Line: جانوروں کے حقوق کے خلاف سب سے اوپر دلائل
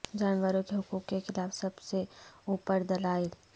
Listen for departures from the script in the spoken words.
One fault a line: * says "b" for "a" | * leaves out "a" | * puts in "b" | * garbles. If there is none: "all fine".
all fine